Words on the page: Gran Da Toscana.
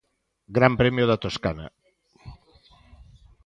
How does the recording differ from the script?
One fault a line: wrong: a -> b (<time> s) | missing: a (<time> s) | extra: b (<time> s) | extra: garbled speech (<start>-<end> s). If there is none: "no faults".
extra: Premio (0.8 s)